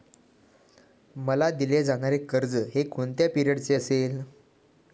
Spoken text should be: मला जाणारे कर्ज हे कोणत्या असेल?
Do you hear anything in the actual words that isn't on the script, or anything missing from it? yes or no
yes